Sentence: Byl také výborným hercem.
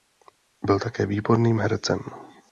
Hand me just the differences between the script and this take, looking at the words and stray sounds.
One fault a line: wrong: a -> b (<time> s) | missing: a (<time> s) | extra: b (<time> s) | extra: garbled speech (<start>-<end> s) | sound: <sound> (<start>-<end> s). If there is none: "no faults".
no faults